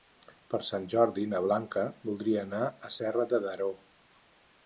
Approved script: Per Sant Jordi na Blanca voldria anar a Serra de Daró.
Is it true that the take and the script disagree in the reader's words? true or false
false